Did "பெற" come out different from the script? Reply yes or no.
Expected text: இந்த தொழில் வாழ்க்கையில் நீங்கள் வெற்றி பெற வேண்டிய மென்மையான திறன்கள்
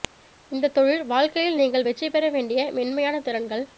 no